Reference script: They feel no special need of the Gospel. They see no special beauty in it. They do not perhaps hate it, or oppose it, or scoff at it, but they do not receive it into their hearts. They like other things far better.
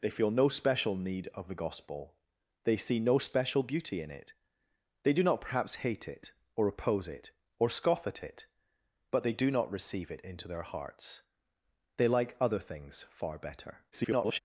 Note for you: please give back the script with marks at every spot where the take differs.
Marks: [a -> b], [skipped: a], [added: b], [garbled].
They feel no special need of the Gospel. They see no special beauty in it. They do not perhaps hate it, or oppose it, or scoff at it, but they do not receive it into their hearts. They like other things far better. [garbled]